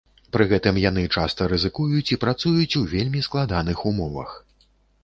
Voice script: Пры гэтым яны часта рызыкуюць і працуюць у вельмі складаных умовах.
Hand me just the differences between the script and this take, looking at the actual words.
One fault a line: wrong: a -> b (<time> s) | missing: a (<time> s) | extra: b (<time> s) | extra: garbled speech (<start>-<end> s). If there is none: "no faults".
no faults